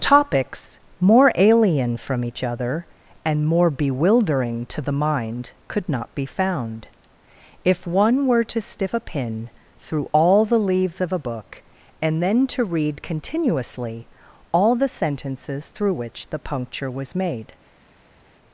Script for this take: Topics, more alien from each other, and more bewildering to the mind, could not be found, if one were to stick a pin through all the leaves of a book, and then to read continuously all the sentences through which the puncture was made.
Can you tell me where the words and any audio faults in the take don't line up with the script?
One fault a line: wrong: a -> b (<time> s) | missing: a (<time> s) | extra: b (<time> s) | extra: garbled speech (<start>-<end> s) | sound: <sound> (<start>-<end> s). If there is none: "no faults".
wrong: stick -> stiff (8.6 s)